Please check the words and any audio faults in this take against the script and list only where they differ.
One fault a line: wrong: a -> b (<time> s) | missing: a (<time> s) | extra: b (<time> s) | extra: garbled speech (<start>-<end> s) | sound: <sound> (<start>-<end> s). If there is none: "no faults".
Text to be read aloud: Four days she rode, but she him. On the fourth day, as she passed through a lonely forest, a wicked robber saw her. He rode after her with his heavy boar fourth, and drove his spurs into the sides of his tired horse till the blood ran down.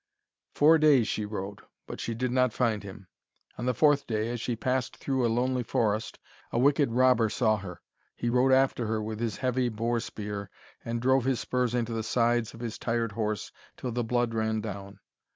extra: did not find (2.1 s)
wrong: fourth -> spear (10.0 s)